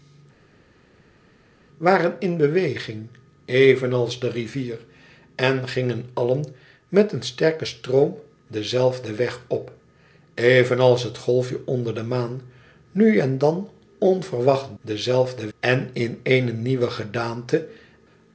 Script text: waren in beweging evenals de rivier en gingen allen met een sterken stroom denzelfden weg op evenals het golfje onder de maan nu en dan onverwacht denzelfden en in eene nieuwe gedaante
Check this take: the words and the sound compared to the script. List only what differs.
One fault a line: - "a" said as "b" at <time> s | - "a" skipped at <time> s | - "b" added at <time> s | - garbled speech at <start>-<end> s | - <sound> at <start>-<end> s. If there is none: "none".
none